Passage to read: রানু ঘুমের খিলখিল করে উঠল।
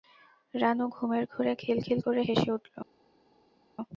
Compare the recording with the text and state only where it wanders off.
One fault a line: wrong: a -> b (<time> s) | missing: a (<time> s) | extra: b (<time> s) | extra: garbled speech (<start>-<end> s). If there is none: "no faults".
extra: ঘোরে (1.3 s)
extra: হেসে (2.3 s)